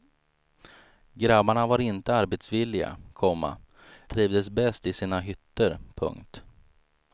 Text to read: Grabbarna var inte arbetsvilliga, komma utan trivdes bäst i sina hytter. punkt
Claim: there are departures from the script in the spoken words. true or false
true